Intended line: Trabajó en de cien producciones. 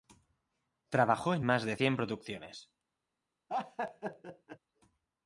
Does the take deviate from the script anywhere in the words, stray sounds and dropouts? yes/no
yes